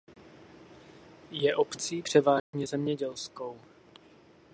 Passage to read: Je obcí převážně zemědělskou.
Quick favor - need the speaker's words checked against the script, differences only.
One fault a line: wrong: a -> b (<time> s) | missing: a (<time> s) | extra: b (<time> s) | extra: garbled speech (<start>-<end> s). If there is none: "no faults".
no faults